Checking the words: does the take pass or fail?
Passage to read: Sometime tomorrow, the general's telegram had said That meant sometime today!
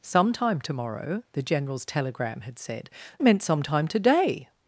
fail